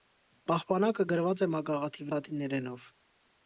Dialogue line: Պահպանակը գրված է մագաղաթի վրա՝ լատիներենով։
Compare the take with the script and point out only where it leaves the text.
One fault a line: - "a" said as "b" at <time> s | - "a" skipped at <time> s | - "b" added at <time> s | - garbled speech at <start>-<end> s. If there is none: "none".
- "վրա" skipped at 2.1 s